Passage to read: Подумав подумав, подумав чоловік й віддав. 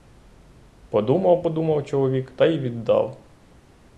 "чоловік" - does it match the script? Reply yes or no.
no